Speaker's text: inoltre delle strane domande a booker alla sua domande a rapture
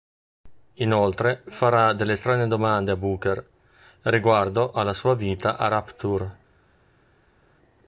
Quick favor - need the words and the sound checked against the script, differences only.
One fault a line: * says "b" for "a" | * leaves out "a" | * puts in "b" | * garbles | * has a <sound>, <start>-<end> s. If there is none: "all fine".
* puts in "farà"
* puts in "riguardo"
* says "vita" for "domande"